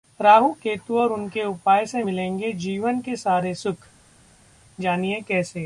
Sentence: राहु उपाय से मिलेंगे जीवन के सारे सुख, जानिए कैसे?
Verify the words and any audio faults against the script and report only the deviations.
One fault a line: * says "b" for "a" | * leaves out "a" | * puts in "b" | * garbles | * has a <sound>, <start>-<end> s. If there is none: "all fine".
* puts in "केतु और उनके"